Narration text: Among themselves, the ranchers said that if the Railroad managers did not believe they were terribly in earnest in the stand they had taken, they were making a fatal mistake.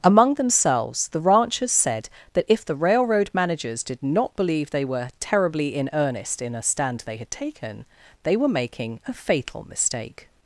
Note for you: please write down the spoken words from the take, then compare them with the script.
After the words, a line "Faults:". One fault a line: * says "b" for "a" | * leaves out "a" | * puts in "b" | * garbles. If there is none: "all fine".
Among themselves, the ranchers said that if the Railroad managers did not believe they were terribly in earnest in a stand they had taken, they were making a fatal mistake.
Faults:
* says "a" for "the"